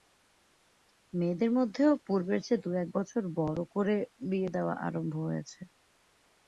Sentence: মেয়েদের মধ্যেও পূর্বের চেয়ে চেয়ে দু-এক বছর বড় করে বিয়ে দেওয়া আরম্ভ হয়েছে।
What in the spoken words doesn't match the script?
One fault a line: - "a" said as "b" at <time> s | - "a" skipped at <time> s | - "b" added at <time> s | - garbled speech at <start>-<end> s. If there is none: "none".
- "চেয়ে" skipped at 2.6 s